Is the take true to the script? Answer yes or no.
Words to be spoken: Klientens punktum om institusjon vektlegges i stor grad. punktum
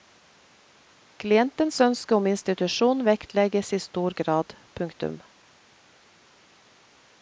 no